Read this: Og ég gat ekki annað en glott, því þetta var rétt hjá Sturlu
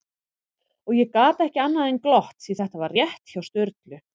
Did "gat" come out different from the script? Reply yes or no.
no